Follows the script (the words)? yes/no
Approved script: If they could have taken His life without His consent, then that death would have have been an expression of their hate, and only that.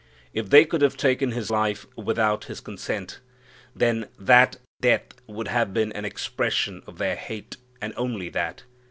no